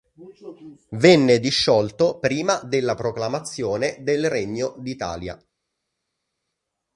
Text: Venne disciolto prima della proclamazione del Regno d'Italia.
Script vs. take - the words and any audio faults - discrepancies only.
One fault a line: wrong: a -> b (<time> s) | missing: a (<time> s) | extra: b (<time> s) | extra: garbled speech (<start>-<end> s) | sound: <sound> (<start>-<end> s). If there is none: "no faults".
no faults